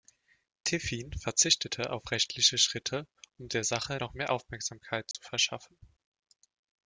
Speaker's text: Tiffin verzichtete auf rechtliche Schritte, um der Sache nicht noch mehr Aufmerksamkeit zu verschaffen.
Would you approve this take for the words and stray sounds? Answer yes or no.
no